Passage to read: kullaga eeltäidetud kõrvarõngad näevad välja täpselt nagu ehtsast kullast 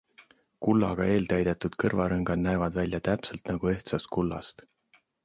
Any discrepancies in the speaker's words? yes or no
no